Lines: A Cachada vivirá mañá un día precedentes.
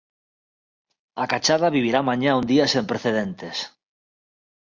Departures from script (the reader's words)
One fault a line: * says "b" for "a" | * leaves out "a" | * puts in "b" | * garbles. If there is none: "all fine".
* puts in "sen"